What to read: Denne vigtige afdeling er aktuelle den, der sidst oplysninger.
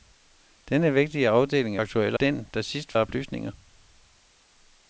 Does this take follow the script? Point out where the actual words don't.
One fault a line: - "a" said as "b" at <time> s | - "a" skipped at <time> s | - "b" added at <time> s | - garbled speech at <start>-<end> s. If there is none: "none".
none